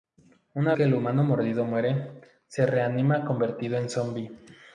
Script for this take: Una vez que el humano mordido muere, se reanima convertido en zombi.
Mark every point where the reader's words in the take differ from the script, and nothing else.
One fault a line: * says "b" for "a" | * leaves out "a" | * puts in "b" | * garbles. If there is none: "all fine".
* leaves out "vez"